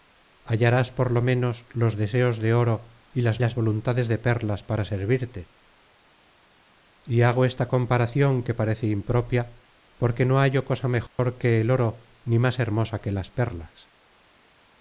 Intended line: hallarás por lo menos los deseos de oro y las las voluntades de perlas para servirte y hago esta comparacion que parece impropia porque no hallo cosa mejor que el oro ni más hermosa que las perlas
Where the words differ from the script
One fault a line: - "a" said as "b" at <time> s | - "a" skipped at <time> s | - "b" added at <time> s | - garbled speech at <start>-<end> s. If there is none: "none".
none